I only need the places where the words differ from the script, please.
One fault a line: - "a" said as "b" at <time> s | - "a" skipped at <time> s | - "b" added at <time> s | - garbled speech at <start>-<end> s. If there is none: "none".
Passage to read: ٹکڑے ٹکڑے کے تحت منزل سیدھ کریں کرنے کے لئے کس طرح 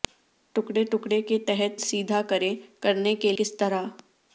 - "منزل" skipped at 1.8 s
- "لئے" skipped at 3.3 s